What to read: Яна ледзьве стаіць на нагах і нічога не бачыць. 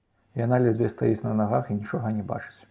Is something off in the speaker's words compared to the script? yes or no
no